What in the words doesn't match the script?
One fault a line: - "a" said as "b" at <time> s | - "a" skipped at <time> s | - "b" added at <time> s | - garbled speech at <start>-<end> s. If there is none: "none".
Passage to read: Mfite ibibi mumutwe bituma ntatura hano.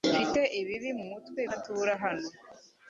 - "bituma" skipped at 1.4 s